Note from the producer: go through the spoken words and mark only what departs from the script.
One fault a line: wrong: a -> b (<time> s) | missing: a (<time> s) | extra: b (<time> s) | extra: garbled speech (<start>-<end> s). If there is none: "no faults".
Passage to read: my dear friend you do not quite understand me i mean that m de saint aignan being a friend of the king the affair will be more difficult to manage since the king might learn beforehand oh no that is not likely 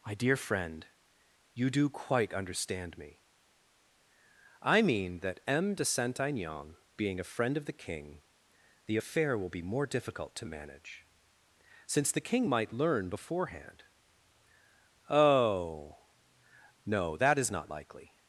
missing: not (1.9 s)